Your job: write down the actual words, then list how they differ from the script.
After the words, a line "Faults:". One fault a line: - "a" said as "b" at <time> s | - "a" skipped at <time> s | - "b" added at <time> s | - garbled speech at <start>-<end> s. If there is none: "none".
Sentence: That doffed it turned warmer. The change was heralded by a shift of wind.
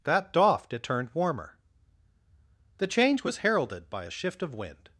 That doffed it turned warmer. The change was heralded by a shift of wind.
Faults:
none